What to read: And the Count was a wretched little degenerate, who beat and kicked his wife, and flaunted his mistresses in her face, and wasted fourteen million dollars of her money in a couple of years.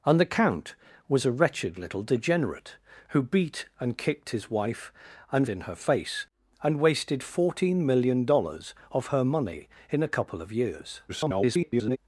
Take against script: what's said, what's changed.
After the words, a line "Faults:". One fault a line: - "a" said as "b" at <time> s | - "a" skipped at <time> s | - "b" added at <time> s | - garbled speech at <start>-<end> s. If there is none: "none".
And the Count was a wretched little degenerate, who beat and kicked his wife, and in her face, and wasted fourteen million dollars of her money in a couple of years. [garbled]
Faults:
- "flaunted his mistresses" skipped at 5.5 s
- garbled speech at 11.1-12.0 s